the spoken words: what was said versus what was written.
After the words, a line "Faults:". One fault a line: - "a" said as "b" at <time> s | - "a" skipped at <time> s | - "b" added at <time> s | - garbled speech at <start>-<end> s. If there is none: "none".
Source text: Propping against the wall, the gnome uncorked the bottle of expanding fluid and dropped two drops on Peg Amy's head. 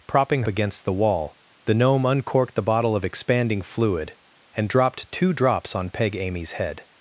Propping against the wall, the gnome uncorked the bottle of expanding fluid and dropped two drops on Peg Amy's head.
Faults:
none